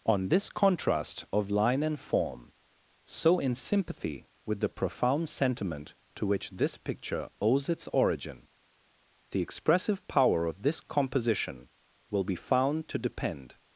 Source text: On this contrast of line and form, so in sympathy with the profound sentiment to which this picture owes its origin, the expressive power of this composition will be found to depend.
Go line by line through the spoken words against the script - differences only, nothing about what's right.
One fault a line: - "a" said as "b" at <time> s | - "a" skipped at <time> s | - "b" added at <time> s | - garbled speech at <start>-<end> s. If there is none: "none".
none